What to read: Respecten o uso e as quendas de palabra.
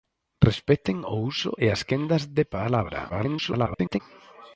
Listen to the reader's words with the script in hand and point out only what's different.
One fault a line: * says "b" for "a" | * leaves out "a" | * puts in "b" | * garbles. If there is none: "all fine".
* garbles